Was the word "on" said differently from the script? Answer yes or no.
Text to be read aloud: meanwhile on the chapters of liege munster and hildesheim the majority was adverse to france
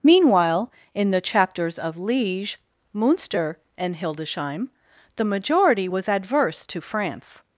yes